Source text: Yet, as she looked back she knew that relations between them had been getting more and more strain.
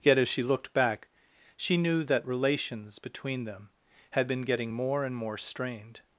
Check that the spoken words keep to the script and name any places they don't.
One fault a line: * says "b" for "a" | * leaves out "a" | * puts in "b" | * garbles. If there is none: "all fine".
* says "strained" for "strain"